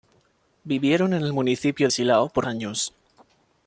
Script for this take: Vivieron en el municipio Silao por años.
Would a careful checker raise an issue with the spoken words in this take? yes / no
no